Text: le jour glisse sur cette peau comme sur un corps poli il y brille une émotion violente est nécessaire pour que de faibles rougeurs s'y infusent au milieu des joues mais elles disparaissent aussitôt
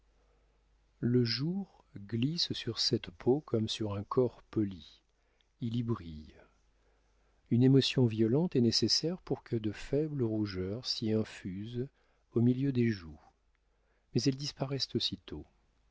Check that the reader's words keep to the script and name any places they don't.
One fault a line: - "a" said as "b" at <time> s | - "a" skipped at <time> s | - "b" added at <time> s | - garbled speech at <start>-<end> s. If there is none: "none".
none